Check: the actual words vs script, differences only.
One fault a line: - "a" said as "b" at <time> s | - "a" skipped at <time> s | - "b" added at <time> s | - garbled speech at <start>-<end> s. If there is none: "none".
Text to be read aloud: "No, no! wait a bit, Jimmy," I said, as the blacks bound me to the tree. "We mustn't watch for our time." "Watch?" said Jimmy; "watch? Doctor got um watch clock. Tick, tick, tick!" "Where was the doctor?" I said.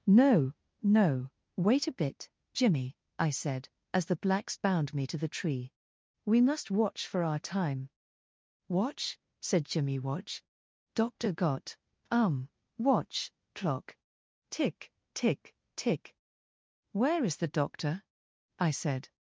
- "mustn't" said as "must" at 6.4 s
- "was" said as "is" at 17.2 s